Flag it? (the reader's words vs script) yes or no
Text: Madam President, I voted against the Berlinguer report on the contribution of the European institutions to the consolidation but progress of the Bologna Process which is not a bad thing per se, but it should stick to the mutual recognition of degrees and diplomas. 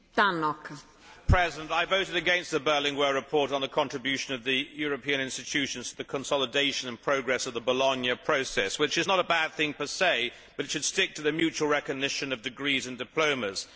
yes